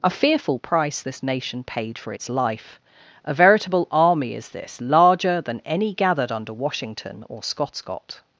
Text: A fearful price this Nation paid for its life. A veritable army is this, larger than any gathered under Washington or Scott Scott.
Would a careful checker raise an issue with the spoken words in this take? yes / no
no